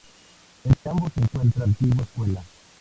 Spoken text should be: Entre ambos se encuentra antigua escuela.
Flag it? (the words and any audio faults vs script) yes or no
yes